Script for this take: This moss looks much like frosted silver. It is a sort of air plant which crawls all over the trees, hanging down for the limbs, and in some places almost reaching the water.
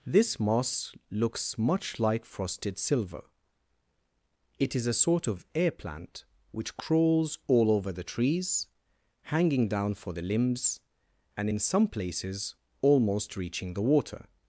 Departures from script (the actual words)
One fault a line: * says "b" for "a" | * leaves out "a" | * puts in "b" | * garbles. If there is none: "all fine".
all fine